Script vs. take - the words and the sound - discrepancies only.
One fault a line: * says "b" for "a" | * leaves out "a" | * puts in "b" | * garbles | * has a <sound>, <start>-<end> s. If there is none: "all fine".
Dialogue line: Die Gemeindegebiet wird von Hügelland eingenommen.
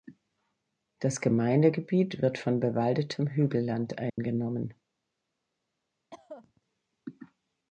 * says "Das" for "Die"
* puts in "bewaldetem"
* has a dropout, 4.1-4.2 s
* has a cough, 6.1-6.6 s